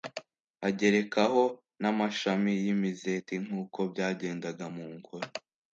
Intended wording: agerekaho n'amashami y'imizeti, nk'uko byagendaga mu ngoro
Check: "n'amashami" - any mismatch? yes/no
no